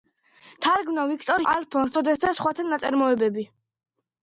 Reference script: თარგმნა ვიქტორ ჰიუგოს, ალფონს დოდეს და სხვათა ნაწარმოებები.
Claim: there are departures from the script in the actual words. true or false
true